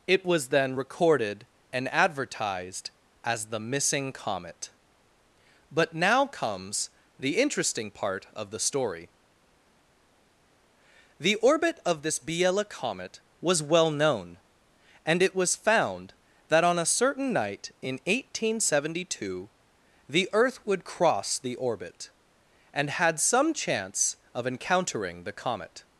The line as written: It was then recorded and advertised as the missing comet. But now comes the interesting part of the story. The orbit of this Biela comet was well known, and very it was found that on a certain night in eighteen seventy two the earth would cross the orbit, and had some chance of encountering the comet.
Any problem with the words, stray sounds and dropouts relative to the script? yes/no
yes